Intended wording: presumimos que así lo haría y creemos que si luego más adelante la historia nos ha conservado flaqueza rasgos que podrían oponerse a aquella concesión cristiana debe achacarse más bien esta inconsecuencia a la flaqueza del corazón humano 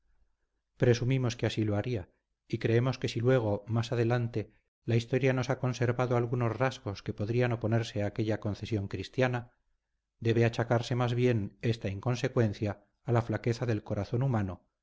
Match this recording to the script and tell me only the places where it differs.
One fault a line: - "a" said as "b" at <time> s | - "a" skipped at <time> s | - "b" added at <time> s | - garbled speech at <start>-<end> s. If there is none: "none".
- "flaqueza" said as "algunos" at 6.2 s